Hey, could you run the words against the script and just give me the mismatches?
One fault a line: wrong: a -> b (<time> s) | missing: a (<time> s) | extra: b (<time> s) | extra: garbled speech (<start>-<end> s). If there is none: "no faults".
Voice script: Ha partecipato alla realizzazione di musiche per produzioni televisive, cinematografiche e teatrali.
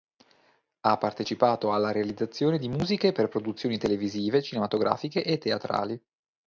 no faults